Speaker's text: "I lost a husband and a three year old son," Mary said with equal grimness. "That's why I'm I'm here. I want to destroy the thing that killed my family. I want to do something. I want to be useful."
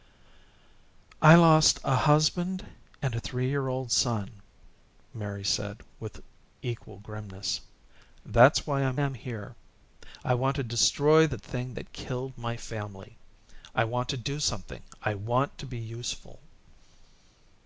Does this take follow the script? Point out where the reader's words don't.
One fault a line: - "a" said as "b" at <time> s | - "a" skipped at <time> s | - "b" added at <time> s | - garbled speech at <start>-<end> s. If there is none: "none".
none